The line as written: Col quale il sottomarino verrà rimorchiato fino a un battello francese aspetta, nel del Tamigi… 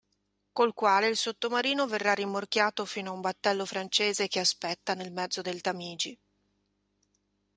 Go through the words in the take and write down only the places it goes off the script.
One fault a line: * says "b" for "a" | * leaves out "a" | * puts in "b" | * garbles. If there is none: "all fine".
* puts in "che"
* puts in "mezzo"